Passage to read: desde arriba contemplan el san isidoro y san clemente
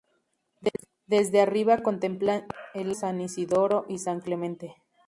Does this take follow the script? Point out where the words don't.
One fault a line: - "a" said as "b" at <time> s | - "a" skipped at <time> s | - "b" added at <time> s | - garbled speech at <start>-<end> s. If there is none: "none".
none